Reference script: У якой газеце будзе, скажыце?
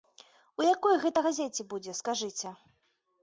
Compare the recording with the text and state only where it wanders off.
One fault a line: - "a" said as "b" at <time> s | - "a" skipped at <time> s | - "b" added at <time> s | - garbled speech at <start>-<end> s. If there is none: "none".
- "гэта" added at 1.0 s